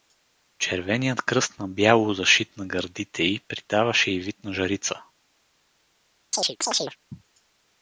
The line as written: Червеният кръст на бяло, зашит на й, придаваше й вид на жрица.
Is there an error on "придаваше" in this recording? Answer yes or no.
no